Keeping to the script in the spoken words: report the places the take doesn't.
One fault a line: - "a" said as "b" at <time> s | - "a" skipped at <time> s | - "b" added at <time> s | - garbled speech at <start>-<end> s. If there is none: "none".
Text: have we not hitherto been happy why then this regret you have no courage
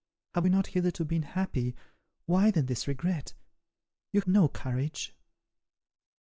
- "have" skipped at 4.2 s